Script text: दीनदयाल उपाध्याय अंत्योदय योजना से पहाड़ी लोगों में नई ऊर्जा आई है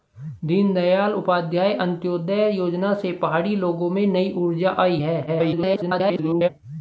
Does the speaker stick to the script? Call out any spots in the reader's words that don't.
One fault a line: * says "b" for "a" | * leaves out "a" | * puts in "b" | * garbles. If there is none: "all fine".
* garbles